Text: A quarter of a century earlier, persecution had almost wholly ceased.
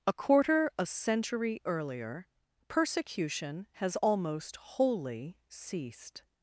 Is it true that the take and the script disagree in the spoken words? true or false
true